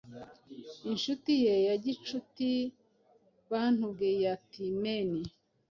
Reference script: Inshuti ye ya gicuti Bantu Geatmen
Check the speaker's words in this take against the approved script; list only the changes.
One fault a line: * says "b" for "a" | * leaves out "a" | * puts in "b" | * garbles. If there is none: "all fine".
all fine